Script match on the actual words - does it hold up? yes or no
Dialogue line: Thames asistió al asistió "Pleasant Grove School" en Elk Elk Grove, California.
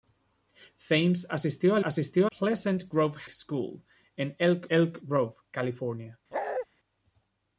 yes